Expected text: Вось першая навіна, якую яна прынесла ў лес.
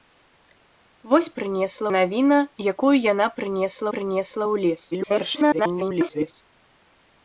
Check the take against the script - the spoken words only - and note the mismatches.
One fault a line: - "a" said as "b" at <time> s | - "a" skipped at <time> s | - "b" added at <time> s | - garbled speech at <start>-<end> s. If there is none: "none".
- "першая" said as "прынесла" at 1.4 s
- "прынесла" added at 3.9 s
- garbled speech at 4.9-6.3 s